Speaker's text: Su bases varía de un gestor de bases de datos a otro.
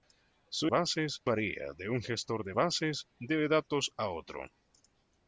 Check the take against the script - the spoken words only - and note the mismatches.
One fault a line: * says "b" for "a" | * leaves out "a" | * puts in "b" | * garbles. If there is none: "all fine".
all fine